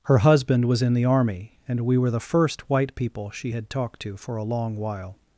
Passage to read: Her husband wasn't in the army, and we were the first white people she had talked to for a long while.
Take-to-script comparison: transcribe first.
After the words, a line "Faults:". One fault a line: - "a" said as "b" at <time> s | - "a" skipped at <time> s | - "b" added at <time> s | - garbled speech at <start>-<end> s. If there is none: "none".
Her husband was in the army, and we were the first white people she had talked to for a long while.
Faults:
- "wasn't" said as "was" at 0.7 s